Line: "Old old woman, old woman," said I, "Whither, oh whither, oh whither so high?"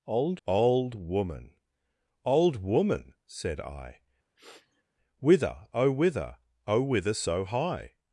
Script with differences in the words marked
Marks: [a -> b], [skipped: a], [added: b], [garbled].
"Old old woman, old woman," said I, "Whither, oh whither, oh whither so high?"